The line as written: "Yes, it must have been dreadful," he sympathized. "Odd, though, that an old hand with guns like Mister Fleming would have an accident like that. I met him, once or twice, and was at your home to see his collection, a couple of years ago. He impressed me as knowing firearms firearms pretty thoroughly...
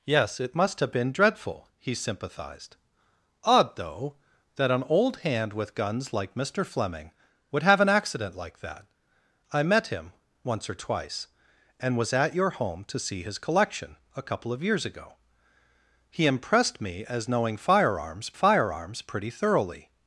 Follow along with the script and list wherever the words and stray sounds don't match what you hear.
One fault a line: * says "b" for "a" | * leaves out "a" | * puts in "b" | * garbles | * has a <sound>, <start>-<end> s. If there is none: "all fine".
all fine